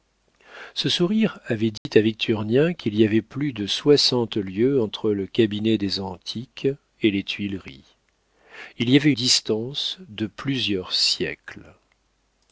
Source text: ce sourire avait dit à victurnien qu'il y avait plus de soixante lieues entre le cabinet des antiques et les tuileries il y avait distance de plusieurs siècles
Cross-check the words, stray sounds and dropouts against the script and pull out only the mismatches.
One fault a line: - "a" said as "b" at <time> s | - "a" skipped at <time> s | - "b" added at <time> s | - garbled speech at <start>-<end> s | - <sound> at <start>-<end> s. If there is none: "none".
- dropout at 1.8-1.9 s